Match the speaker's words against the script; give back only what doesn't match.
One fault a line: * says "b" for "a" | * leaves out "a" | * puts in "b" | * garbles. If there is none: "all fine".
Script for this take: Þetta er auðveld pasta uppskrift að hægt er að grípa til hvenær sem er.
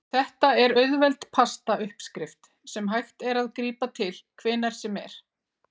* says "sem" for "að"